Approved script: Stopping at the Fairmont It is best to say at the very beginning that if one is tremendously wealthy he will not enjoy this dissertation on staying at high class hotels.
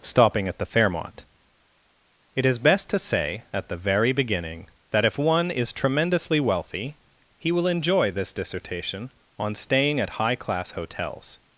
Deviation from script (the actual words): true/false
true